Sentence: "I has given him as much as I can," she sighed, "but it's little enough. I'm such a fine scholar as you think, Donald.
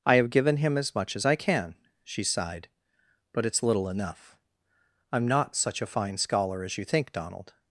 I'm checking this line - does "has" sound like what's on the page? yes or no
no